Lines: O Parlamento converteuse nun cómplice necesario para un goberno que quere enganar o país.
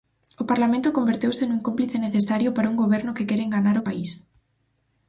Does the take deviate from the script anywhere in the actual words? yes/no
no